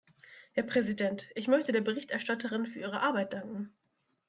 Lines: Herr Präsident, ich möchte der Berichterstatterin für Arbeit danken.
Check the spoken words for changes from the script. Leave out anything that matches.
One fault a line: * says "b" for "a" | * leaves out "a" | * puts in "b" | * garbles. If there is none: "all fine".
* puts in "ihre"